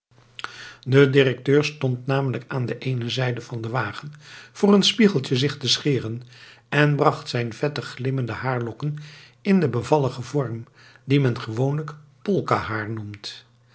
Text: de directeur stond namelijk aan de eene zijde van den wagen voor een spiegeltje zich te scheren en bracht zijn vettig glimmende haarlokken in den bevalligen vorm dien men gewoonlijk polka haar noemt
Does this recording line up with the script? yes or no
yes